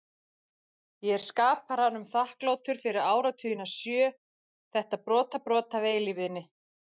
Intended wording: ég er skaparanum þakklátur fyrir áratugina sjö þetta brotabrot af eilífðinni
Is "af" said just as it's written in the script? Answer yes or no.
yes